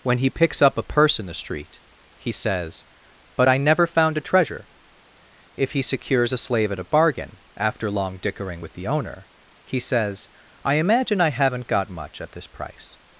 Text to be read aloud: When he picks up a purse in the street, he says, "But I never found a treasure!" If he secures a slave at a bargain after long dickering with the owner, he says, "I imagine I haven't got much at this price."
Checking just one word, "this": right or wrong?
right